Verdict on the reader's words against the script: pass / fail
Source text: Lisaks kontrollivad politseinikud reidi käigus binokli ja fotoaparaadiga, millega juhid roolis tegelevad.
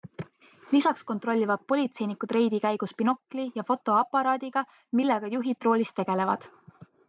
pass